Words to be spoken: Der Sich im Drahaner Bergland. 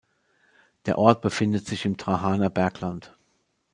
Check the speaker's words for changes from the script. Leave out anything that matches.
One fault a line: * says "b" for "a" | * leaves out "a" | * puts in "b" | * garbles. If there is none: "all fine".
* puts in "Ort befindet"